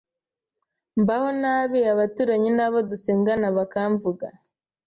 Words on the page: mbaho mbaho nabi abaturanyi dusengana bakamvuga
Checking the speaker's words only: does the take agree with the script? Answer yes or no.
no